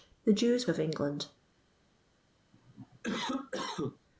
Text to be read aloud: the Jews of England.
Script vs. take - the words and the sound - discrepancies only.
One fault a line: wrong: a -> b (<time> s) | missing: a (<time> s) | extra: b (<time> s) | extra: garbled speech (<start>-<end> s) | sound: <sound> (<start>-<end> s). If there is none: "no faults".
sound: cough (2.5-4.0 s)